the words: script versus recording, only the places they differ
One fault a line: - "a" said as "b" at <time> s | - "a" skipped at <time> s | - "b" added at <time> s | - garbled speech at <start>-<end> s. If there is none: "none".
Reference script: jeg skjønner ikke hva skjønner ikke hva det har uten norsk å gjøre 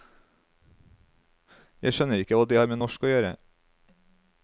- "skjønner ikke hva" skipped at 2.5 s
- "uten" said as "med" at 2.7 s